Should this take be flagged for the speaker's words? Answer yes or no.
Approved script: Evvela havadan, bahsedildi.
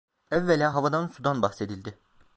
yes